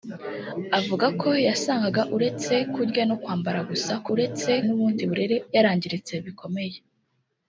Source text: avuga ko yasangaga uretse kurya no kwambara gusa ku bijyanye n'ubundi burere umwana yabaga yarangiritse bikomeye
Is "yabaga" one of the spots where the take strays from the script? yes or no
yes